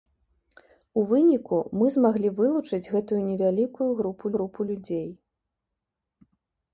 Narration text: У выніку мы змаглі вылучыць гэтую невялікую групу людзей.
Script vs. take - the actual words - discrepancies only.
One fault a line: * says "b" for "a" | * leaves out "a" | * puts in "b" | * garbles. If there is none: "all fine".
* puts in "групу"